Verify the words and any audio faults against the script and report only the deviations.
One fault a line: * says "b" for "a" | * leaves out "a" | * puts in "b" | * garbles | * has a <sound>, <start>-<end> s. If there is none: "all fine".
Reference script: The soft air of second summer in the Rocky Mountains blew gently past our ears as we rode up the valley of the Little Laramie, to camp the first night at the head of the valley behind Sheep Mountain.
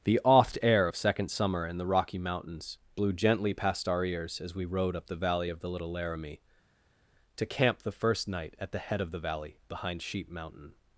* says "oft" for "soft"